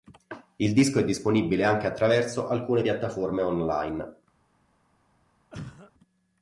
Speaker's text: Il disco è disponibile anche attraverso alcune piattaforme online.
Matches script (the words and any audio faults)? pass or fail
fail